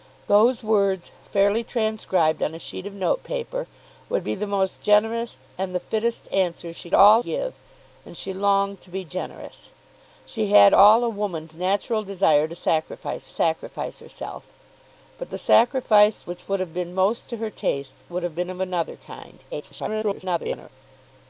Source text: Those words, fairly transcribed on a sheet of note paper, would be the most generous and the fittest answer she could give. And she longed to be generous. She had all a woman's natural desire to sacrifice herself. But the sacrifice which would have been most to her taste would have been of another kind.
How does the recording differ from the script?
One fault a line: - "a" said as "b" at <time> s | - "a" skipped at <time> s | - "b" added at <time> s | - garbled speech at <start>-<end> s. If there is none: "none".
- "could" said as "all" at 6.9 s
- "sacrifice" added at 13.3 s
- garbled speech at 19.5-20.7 s